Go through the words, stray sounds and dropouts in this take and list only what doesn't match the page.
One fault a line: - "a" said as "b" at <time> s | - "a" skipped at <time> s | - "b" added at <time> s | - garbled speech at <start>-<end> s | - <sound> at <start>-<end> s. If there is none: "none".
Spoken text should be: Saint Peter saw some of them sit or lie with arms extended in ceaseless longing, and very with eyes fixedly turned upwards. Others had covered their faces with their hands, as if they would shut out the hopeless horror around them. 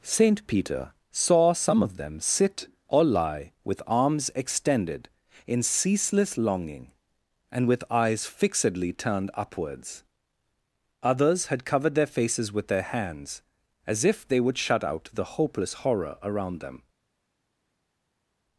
- "very" skipped at 7.7 s